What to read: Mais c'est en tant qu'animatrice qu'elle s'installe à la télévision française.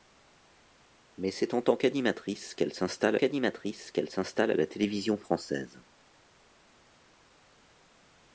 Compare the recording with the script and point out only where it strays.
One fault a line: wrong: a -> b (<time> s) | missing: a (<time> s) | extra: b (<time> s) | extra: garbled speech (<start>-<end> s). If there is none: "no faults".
extra: qu'animatrice qu'elle s'installe (3.2 s)